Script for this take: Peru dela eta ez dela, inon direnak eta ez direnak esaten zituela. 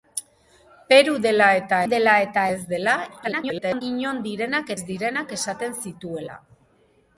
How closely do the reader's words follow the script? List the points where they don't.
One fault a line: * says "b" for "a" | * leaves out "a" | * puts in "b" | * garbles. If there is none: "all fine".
* puts in "dela eta"
* garbles
* leaves out "eta"